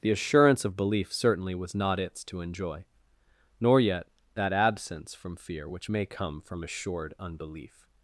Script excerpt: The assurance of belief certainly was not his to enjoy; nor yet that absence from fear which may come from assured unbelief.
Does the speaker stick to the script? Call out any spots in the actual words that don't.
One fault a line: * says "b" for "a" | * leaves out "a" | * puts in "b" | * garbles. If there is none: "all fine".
* says "its" for "his"